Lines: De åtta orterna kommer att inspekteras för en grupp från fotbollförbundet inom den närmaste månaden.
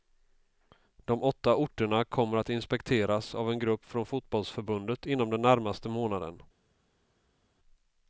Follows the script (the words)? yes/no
no